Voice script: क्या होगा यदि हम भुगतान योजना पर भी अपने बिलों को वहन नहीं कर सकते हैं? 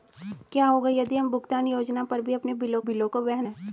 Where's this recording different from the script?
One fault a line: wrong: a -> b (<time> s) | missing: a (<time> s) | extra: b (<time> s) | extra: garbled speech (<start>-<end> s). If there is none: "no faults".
extra: बिलों (2.8 s)
missing: नहीं कर सकते (3.4 s)